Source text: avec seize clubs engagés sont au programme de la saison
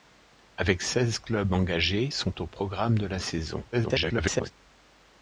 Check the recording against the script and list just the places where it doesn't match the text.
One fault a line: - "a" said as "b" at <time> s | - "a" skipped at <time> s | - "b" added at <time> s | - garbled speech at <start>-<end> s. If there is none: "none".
- garbled speech at 3.7-4.5 s